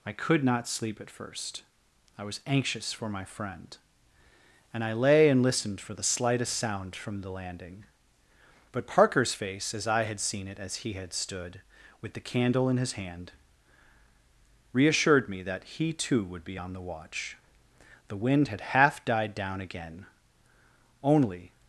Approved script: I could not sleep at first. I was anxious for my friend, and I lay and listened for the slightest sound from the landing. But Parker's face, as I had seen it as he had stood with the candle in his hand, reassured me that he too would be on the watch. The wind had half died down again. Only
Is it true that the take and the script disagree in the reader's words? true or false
false